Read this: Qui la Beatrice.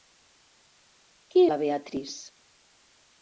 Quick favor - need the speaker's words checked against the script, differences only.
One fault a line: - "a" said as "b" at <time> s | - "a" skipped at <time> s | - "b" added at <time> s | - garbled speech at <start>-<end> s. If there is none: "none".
none